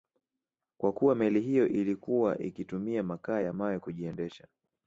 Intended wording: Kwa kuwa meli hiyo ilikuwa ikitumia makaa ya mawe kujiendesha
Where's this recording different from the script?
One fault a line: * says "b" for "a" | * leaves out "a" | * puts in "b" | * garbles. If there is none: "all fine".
all fine